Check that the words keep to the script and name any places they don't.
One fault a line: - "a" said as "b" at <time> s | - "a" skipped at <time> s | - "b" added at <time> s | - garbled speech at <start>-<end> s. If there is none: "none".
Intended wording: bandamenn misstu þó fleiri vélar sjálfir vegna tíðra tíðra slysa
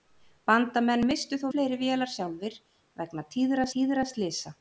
none